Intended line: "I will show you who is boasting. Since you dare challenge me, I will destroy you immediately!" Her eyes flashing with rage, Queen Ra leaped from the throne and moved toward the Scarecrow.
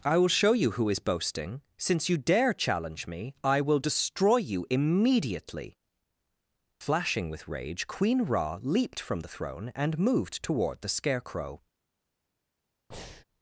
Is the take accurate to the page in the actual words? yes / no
no